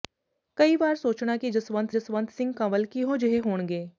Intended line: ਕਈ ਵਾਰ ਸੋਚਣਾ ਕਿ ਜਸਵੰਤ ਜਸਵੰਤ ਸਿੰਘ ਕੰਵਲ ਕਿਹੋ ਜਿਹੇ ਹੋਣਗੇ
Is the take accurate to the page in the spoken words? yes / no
yes